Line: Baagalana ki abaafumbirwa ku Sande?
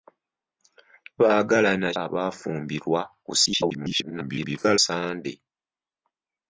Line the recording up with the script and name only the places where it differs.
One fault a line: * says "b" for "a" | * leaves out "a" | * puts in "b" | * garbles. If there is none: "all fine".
* leaves out "ki"
* garbles